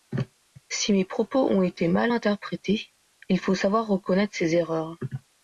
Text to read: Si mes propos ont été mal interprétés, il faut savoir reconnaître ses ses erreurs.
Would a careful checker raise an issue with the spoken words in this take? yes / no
yes